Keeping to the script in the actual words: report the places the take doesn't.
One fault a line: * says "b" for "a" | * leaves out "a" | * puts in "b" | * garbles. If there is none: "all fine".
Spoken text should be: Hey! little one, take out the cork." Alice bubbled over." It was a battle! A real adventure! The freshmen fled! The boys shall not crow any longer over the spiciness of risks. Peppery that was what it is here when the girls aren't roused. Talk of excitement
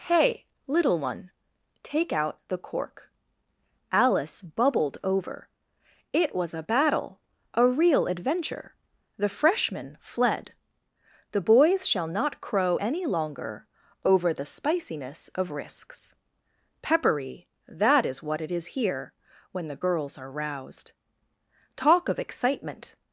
* says "is" for "was"
* says "are" for "aren't"